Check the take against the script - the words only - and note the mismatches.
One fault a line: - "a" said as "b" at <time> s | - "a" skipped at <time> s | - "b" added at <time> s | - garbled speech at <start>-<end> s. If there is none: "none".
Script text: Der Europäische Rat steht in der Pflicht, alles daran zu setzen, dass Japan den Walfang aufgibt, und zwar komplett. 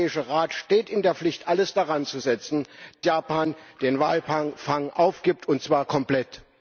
- "dass" skipped at 2.6 s